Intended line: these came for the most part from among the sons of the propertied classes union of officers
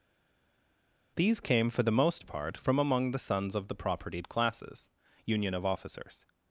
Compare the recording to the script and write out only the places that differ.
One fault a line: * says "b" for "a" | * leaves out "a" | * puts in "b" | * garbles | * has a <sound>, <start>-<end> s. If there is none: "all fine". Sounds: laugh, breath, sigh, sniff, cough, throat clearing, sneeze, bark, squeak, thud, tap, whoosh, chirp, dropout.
all fine